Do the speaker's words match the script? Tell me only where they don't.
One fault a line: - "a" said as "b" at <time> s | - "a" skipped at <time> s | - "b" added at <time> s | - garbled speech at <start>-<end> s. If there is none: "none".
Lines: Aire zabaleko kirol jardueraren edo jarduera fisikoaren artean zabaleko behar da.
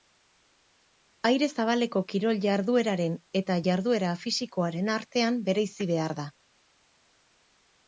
- "edo" said as "eta" at 3.4 s
- "zabaleko" said as "bereizi" at 5.5 s